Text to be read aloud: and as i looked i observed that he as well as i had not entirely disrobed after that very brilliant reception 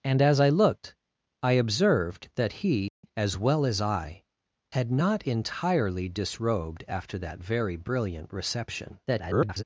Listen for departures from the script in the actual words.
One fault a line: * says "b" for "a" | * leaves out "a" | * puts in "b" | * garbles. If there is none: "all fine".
* garbles